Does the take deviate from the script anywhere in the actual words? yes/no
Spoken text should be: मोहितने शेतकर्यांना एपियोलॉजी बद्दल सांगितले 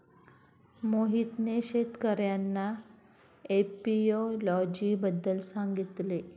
no